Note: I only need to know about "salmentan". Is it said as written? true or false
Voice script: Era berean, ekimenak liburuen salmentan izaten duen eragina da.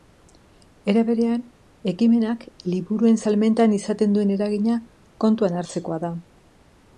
true